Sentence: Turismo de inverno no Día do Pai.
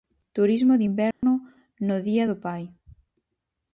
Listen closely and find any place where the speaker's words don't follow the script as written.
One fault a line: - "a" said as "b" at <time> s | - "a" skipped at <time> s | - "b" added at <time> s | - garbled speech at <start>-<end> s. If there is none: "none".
none